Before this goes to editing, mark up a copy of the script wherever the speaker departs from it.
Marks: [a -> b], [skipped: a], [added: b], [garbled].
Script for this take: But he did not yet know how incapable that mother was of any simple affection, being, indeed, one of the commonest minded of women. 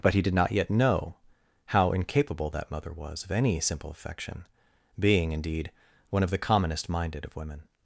But he did not yet know how incapable that mother was of any simple affection, being, indeed, one of the commonest minded of women.